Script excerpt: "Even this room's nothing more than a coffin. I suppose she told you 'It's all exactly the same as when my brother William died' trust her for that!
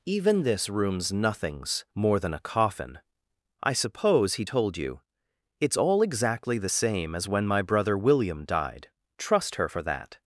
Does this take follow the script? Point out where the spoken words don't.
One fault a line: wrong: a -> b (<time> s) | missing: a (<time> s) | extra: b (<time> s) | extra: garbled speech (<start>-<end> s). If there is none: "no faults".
wrong: nothing -> nothings (1.1 s)
wrong: she -> he (4.3 s)